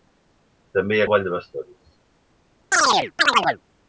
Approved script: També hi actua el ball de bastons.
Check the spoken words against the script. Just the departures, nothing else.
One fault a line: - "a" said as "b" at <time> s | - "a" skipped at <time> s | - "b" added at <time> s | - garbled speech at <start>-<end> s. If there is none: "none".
- "actua" skipped at 1.0 s